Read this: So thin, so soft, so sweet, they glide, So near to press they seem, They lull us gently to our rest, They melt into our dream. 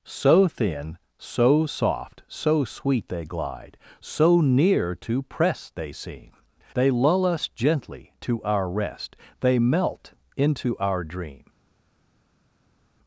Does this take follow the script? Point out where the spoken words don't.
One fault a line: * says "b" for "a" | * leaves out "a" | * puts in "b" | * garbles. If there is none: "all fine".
all fine